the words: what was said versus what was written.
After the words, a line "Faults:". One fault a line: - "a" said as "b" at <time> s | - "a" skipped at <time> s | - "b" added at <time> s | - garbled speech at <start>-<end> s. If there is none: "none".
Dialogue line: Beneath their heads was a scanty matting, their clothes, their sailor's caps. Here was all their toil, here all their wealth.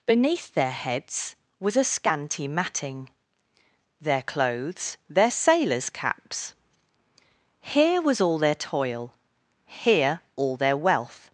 Beneath their heads was a scanty matting, their clothes, their sailor's caps. Here was all their toil, here all their wealth.
Faults:
none